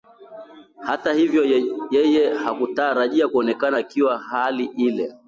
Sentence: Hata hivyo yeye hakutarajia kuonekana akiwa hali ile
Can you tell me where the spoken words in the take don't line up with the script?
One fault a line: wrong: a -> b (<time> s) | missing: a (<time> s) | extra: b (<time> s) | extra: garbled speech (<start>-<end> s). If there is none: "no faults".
no faults